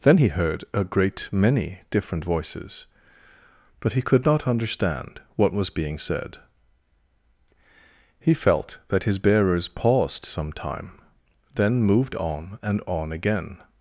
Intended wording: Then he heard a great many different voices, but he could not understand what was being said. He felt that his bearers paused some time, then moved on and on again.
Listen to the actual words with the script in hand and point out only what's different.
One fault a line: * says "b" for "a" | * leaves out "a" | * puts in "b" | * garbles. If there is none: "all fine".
all fine